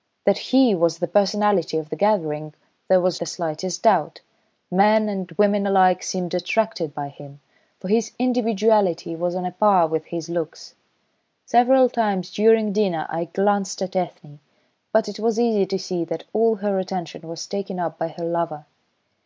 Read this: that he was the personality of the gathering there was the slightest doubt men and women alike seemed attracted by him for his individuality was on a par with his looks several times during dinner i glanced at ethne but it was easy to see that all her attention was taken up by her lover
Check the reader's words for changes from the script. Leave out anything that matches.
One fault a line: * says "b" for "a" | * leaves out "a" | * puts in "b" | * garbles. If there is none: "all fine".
all fine